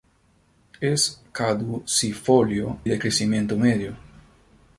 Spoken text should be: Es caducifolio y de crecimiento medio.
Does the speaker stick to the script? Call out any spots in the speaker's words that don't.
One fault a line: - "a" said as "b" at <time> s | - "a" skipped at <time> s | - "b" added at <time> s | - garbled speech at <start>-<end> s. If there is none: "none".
- "y" skipped at 2.8 s